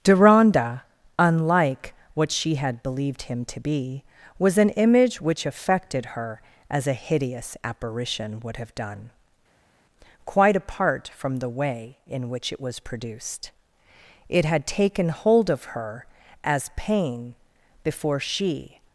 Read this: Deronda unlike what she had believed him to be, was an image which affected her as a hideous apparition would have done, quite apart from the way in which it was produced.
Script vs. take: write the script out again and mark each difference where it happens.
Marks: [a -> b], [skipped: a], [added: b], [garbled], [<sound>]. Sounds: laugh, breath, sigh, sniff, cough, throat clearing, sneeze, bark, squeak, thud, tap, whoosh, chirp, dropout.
Deronda unlike what she had believed him to be, was an image which affected her as a hideous apparition would have done, quite apart from the way in which it was produced. [added: It had taken hold of her as pain before she]